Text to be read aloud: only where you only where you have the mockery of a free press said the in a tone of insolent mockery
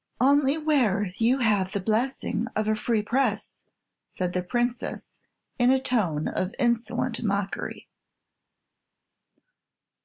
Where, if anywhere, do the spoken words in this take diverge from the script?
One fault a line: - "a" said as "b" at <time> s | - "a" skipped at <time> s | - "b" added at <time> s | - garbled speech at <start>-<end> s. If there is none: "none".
- "only where you" skipped at 1.4 s
- "mockery" said as "blessing" at 1.8 s
- "princess" added at 4.4 s